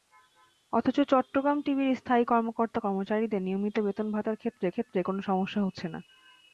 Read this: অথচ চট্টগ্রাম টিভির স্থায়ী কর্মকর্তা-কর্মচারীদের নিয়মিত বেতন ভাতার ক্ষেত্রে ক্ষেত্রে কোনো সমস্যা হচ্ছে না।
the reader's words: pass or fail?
pass